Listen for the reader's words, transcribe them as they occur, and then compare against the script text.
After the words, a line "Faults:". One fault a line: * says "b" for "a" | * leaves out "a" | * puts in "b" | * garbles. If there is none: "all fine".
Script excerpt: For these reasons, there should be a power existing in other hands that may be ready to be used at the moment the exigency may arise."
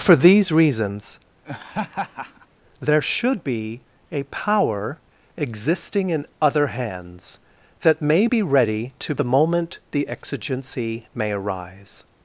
For these reasons, there should be a power existing in other hands that may be ready to the moment the exigency may arise."
Faults:
* leaves out "be used at"